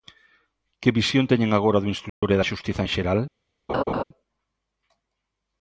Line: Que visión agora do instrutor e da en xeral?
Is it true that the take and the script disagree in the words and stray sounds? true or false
true